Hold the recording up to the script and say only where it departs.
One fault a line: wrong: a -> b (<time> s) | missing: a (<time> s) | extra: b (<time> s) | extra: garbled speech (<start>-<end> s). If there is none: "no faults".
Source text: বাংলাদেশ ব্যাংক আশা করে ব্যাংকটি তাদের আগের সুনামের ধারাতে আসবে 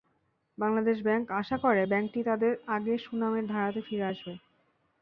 extra: ফিরে (3.9 s)